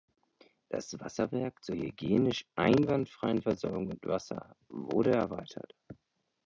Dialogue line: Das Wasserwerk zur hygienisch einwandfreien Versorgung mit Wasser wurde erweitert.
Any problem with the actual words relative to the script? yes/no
no